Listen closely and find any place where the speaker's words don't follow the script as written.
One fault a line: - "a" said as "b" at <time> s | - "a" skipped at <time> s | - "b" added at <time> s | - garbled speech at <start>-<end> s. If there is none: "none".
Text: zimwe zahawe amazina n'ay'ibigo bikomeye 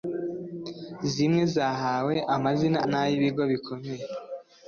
none